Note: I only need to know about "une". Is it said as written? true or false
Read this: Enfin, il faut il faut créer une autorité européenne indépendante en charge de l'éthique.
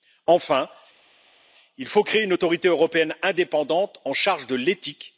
true